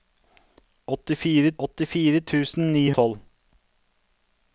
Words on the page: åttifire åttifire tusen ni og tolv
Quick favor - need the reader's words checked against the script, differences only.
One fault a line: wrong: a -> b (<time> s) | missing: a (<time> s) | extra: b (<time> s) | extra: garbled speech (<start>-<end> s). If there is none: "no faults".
no faults